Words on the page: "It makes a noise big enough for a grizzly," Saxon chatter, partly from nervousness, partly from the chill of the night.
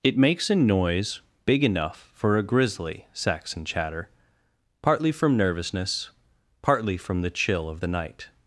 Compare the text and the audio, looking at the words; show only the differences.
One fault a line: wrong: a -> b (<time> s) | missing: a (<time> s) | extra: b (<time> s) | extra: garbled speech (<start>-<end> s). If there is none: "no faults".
no faults